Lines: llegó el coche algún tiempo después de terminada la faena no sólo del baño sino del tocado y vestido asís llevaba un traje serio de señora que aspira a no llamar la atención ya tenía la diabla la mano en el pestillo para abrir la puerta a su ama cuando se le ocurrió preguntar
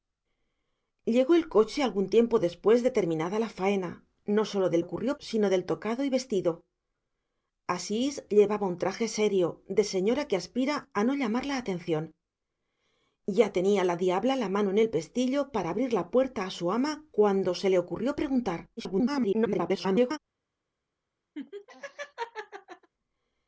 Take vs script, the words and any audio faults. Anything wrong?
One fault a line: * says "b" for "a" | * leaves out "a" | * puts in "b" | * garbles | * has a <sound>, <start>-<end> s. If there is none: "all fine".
* says "ocurrió" for "baño"
* garbles
* has a laugh, 21.4-22.9 s